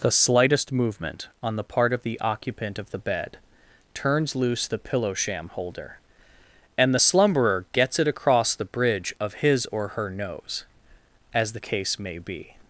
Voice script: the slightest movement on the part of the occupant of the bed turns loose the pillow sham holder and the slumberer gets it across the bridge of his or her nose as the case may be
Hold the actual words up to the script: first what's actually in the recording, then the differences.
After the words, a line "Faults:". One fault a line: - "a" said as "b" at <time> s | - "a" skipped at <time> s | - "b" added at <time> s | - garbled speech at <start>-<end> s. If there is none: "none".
the slightest movement on the part of the occupant of the bed turns loose the pillow sham holder and the slumberer gets it across the bridge of his or her nose as the case may be
Faults:
none